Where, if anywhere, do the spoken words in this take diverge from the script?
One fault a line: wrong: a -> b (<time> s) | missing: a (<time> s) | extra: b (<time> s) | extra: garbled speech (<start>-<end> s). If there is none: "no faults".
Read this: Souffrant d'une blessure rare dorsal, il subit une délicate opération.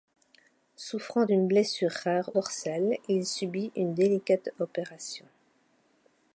no faults